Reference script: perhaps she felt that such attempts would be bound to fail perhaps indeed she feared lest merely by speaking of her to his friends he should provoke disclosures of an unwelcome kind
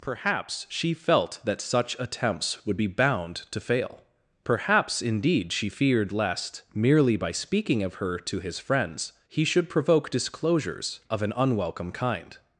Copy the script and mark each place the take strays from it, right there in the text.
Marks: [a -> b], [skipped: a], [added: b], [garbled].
perhaps she felt that such attempts would be bound to fail perhaps indeed she feared lest merely by speaking of her to his friends he should provoke disclosures of an unwelcome kind